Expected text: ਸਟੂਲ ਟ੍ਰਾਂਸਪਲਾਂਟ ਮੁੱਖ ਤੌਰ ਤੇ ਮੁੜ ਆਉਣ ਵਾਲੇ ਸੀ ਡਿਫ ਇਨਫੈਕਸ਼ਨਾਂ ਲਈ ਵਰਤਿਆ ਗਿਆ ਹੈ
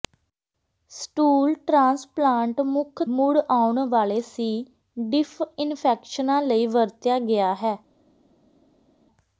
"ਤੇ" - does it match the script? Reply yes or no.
no